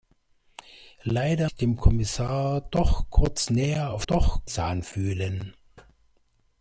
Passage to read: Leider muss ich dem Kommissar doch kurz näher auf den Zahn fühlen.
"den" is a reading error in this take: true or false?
true